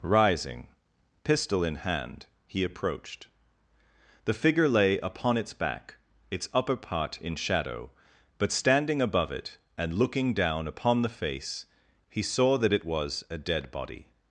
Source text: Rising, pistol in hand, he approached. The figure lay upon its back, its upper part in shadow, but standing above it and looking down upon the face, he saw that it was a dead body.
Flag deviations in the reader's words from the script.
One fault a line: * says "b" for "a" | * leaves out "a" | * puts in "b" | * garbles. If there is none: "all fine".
all fine